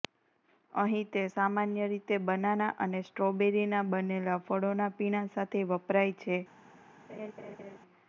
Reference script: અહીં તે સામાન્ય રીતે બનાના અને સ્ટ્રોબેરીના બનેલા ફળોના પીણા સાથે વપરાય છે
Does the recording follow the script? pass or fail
pass